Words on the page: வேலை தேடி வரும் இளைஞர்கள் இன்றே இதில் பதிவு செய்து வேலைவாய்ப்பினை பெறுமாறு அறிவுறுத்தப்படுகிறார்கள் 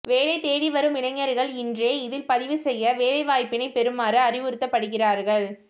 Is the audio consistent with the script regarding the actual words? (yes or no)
yes